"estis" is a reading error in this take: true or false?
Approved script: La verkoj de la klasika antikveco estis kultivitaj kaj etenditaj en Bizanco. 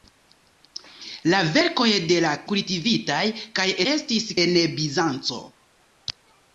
true